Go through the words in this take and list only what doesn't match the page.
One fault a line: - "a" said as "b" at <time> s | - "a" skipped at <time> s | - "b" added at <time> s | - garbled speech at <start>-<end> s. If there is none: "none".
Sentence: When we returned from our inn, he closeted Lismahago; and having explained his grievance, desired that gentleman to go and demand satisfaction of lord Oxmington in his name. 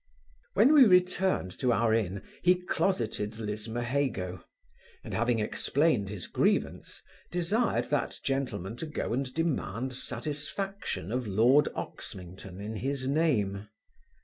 - "from" said as "to" at 1.6 s